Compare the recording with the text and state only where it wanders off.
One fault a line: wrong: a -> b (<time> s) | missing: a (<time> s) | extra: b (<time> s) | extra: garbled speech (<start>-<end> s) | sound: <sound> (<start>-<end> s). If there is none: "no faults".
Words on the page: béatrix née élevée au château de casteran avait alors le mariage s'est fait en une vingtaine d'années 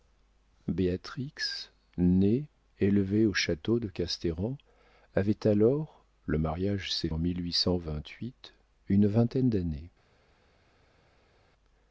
missing: fait (7.1 s)